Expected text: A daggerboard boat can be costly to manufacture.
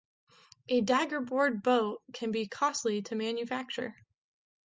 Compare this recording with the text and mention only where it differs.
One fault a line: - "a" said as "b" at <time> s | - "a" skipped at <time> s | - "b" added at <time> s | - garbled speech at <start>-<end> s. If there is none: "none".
none